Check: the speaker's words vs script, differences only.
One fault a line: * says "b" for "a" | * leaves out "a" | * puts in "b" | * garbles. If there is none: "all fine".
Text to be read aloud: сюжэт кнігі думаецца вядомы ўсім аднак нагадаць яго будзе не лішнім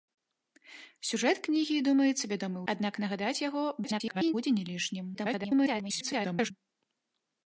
* leaves out "ўсім"
* garbles
* garbles